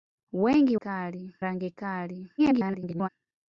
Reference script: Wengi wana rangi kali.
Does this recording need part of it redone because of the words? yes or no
yes